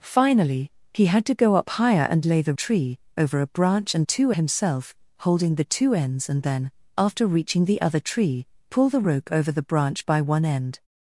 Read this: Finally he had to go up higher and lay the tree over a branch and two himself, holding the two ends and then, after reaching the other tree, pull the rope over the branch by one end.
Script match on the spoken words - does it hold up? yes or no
yes